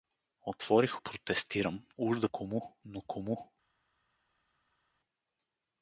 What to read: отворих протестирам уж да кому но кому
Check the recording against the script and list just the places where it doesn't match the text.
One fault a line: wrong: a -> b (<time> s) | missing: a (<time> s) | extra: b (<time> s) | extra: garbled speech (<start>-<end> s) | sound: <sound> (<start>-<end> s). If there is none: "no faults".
no faults